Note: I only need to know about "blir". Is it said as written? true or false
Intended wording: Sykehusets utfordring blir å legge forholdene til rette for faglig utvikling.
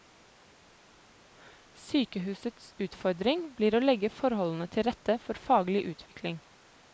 true